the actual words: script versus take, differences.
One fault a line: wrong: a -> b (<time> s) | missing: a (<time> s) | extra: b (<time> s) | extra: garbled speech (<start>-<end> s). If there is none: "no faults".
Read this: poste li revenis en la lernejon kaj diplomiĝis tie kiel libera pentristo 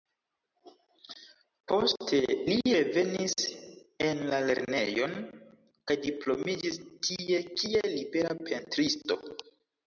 no faults